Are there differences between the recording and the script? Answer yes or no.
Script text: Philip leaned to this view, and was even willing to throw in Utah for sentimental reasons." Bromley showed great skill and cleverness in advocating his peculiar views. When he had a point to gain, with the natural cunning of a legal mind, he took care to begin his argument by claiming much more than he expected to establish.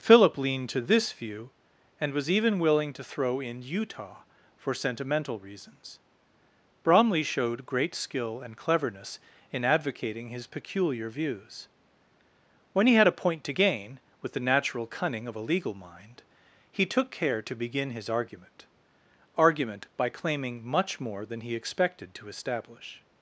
yes